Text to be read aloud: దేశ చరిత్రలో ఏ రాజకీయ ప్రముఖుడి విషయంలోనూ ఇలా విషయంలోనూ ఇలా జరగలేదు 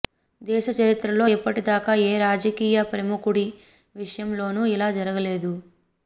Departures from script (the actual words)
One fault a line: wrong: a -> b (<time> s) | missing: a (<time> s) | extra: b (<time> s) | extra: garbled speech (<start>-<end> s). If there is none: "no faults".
extra: ఇప్పటిదాకా (1.3 s)
missing: విషయంలోనూ ఇలా (4.9 s)